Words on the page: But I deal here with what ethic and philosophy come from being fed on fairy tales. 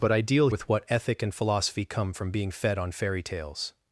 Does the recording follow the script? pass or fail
fail